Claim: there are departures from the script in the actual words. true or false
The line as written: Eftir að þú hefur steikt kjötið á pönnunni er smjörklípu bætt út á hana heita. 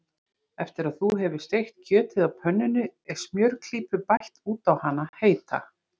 false